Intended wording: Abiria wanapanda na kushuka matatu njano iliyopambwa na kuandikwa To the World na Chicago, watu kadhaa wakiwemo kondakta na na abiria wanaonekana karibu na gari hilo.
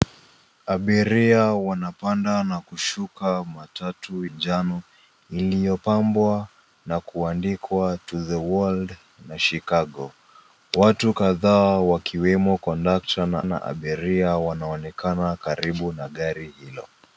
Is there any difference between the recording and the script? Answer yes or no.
no